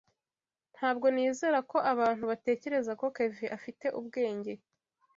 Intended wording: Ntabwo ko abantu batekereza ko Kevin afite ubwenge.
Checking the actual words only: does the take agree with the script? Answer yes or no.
no